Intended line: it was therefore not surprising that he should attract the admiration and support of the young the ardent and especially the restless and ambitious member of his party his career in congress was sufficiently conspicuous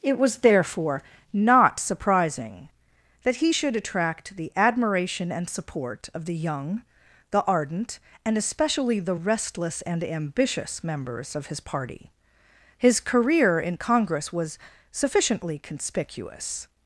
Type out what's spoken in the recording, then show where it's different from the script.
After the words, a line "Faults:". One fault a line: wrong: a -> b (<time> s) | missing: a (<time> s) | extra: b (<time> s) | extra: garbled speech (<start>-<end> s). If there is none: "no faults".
it was therefore not surprising that he should attract the admiration and support of the young the ardent and especially the restless and ambitious members of his party his career in congress was sufficiently conspicuous
Faults:
wrong: member -> members (10.8 s)